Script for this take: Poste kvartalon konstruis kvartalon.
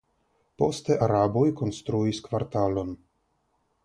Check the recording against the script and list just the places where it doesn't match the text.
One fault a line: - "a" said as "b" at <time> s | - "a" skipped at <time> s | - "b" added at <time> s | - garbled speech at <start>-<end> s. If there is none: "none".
- "kvartalon" said as "araboj" at 1.1 s